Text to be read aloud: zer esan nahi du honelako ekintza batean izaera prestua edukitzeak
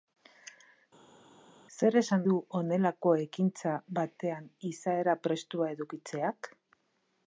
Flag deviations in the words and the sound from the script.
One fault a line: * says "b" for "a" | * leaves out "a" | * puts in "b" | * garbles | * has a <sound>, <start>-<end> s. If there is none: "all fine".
* leaves out "nahi"